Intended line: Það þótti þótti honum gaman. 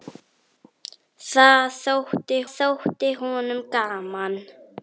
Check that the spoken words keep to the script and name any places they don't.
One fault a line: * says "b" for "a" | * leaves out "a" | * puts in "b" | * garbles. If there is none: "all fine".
all fine